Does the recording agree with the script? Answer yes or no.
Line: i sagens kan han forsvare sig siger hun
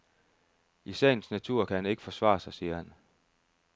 no